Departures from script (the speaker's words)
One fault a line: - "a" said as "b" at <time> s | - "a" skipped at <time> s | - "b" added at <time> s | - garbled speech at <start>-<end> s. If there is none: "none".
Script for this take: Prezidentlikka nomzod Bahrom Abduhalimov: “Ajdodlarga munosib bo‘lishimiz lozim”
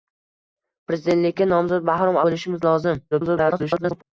- "Abduhalimov Ajdodlarga munosib" skipped at 2.2 s
- garbled speech at 3.1-4.0 s